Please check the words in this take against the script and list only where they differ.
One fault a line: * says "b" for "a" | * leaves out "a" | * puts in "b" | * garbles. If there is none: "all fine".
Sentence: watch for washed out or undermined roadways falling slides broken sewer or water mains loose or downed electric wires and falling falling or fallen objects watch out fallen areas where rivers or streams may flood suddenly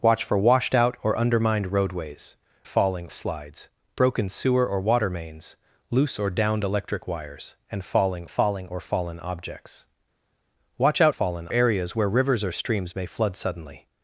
all fine